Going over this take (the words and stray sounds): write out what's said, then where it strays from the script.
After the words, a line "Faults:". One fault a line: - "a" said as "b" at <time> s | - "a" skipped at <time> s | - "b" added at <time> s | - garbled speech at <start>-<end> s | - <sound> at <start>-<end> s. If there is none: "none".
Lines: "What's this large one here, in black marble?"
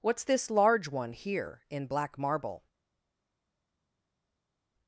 "What's this large one here, in black marble?"
Faults:
none